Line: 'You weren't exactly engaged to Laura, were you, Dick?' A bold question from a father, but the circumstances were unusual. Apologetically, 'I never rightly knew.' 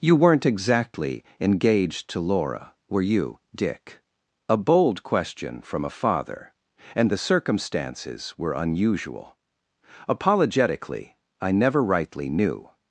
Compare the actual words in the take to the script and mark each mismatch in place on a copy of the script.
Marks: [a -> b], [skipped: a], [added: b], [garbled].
'You weren't exactly engaged to Laura, were you, Dick?' A bold question from a father, [but -> and] the circumstances were unusual. Apologetically, 'I never rightly knew.'